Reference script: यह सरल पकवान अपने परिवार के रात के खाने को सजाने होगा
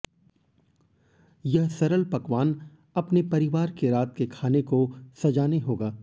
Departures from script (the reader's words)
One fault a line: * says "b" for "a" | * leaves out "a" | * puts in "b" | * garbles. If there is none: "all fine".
all fine